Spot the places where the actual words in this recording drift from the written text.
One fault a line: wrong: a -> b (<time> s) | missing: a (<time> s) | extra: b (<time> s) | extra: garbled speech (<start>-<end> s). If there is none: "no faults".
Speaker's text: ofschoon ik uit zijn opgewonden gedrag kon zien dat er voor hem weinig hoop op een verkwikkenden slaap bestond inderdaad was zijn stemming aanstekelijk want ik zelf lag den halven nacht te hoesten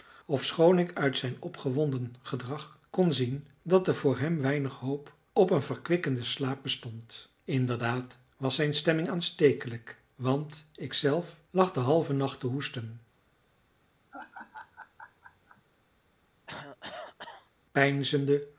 no faults